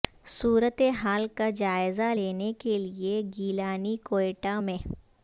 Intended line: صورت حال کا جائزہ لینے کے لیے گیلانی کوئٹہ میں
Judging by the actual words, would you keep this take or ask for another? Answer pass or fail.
pass